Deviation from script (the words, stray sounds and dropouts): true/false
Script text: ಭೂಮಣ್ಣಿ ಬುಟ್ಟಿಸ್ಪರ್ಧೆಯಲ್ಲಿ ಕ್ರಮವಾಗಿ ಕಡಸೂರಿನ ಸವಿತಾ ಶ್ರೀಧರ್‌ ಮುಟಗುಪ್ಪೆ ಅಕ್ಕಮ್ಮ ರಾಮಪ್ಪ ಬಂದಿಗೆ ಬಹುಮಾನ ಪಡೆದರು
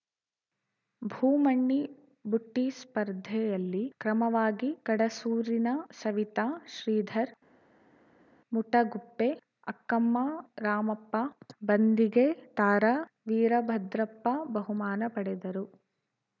true